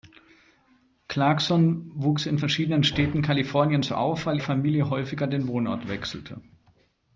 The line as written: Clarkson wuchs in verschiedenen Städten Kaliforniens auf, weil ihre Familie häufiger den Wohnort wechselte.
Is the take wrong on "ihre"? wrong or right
wrong